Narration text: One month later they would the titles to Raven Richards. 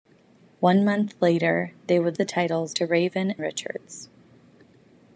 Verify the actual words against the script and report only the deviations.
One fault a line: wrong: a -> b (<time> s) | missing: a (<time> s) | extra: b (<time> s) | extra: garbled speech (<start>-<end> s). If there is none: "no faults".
no faults